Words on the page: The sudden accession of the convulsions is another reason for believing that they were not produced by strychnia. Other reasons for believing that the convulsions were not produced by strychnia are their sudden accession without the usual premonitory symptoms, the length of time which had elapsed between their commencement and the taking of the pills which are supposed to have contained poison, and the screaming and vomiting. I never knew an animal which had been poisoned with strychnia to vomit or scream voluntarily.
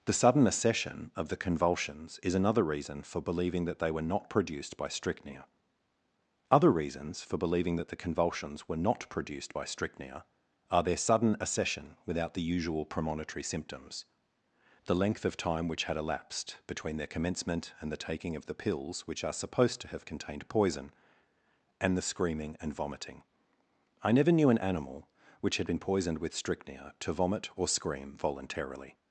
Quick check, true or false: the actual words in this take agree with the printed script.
true